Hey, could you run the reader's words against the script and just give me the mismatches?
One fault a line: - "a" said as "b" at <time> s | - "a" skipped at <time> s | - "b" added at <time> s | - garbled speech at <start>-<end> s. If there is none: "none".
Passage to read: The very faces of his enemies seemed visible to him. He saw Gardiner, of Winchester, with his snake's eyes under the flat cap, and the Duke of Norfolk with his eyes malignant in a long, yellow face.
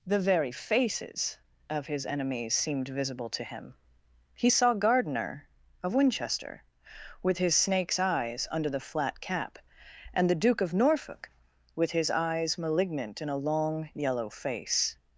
none